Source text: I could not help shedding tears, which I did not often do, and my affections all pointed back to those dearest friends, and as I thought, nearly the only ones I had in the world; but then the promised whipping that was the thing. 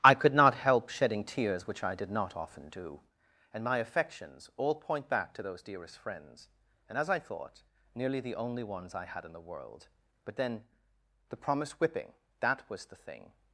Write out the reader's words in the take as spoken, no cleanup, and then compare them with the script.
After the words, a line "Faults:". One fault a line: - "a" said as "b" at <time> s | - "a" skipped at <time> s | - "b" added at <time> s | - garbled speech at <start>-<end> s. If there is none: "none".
I could not help shedding tears, which I did not often do, and my affections all point back to those dearest friends, and as I thought, nearly the only ones I had in the world; but then the promised whipping that was the thing.
Faults:
- "pointed" said as "point" at 4.7 s